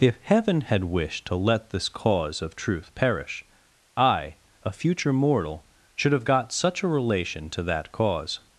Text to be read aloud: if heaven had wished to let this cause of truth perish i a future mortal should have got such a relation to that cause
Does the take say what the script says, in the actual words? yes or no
yes